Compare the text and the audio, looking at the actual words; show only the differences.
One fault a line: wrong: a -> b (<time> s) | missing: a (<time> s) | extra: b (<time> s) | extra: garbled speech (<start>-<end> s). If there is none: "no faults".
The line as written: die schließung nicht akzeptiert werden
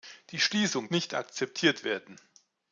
no faults